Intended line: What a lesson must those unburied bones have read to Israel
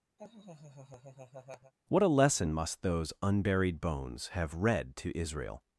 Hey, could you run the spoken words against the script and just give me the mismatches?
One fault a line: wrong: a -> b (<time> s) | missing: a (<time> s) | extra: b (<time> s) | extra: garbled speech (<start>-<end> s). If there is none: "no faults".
no faults